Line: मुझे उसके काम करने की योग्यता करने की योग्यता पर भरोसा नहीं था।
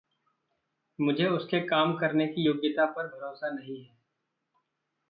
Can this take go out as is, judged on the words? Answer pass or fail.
fail